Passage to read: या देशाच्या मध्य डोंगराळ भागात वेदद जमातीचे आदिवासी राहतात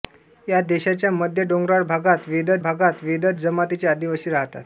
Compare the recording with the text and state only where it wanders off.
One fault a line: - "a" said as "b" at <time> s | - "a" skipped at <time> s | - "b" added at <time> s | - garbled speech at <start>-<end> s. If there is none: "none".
- "भागात वेदद" added at 2.6 s